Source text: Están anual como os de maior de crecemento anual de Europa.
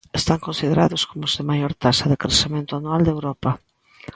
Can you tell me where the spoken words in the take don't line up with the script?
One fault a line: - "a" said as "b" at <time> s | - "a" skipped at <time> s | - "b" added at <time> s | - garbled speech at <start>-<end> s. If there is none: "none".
- "anual" said as "considerados" at 0.5 s
- "taxa" added at 1.8 s